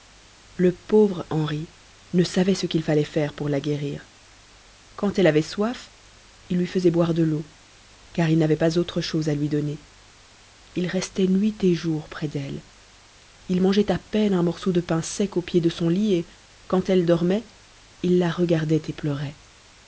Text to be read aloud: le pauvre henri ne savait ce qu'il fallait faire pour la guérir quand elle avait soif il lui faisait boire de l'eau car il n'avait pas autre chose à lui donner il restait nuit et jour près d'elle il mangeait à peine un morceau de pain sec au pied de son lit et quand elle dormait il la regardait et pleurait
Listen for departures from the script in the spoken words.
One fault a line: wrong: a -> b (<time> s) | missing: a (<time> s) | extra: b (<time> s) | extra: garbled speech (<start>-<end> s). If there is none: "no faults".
no faults